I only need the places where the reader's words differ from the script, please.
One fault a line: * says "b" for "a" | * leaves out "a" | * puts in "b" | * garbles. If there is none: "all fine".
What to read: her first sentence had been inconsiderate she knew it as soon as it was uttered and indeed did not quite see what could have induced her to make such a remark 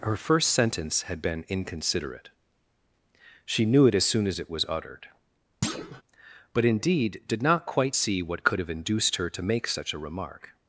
* says "but" for "and"